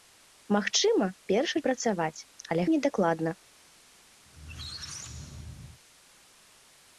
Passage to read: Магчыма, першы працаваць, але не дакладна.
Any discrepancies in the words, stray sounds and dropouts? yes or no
yes